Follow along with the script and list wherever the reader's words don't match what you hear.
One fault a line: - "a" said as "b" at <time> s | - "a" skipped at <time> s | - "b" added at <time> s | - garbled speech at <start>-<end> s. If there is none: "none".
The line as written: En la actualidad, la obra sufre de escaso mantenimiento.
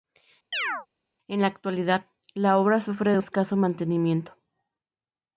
none